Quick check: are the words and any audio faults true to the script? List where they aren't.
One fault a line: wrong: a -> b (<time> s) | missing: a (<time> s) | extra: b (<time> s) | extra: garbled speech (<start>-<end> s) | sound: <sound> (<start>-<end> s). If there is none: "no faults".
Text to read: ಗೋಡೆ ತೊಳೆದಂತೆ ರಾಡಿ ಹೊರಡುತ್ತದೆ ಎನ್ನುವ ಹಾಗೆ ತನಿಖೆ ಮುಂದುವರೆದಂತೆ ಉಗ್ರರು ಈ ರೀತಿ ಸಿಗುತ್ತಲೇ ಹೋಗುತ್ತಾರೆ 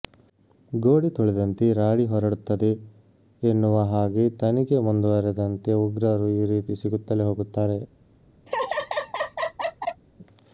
sound: laugh (8.5-10.0 s)